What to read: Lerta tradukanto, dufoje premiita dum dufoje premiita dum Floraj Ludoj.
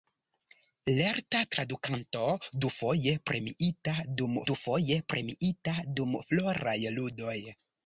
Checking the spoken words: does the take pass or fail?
pass